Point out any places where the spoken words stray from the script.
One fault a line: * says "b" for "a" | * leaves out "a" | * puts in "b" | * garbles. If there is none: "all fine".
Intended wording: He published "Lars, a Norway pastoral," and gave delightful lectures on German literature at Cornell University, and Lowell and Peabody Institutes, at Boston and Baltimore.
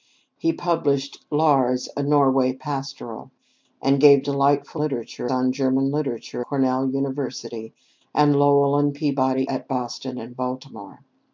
* says "literature" for "lectures"
* leaves out "at"
* leaves out "Institutes"